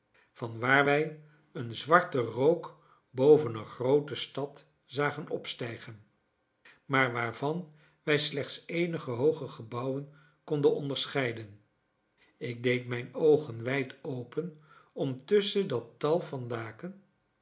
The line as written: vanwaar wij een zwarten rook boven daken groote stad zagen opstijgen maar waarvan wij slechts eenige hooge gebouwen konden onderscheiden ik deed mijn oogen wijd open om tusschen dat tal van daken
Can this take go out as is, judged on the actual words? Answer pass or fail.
fail